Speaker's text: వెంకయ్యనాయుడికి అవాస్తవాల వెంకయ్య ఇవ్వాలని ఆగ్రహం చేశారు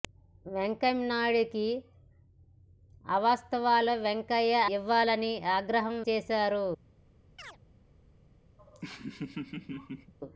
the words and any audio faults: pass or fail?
fail